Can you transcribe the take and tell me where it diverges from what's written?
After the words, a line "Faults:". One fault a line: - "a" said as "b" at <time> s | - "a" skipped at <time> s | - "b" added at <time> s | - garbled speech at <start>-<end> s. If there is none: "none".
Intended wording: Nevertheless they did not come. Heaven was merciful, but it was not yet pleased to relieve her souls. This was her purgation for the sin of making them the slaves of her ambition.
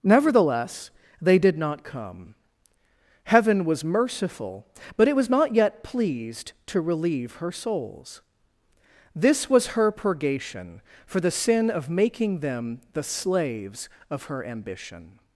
Nevertheless they did not come. Heaven was merciful, but it was not yet pleased to relieve her souls. This was her purgation for the sin of making them the slaves of her ambition.
Faults:
none